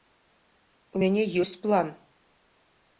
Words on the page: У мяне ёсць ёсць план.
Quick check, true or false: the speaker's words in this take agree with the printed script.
false